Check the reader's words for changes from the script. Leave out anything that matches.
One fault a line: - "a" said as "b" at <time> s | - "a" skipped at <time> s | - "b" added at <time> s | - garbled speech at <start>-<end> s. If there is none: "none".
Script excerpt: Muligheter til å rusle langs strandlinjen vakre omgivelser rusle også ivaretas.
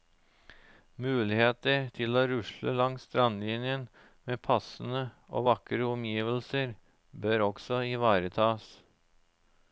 - "med passende og" added at 4.3 s
- "rusle" said as "bør" at 7.3 s